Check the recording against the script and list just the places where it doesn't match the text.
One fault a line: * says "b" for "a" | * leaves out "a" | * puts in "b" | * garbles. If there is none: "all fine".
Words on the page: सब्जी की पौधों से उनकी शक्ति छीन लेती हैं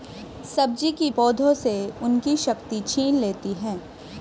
all fine